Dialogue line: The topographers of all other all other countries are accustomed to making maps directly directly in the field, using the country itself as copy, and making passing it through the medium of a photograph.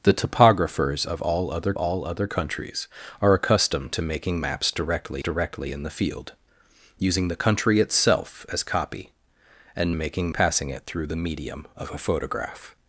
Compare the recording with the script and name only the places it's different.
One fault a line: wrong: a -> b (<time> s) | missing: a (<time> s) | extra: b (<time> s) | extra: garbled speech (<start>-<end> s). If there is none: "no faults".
no faults